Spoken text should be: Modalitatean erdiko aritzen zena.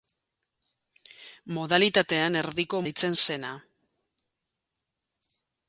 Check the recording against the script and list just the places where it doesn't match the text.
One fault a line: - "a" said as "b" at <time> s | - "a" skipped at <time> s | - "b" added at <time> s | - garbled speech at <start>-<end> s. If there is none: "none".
none